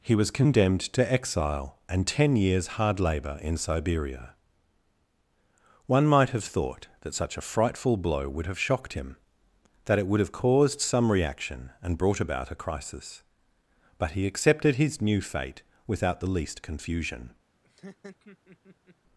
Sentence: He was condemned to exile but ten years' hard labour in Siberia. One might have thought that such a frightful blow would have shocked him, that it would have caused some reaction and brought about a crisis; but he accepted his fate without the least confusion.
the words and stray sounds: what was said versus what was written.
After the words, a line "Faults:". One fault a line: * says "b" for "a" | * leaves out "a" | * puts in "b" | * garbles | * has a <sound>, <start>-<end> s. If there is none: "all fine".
He was condemned to exile and ten years' hard labour in Siberia. One might have thought that such a frightful blow would have shocked him, that it would have caused some reaction and brought about a crisis; but he accepted his new fate without the least confusion.
Faults:
* says "and" for "but"
* puts in "new"
* has a laugh, 17.6-19.0 s